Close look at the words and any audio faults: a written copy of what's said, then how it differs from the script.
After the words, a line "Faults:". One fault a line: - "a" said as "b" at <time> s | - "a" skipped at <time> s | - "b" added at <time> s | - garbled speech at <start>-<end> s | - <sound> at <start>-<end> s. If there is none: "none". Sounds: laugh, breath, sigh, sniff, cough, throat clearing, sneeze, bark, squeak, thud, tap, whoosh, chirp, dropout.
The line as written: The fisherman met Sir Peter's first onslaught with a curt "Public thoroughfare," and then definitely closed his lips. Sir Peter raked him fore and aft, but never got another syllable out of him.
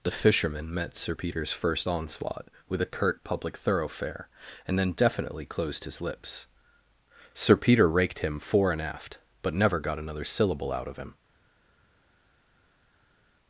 The fisherman met Sir Peter's first onslaught with a curt "Public thoroughfare," and then definitely closed his lips. Sir Peter raked him fore and aft, but never got another syllable out of him.
Faults:
none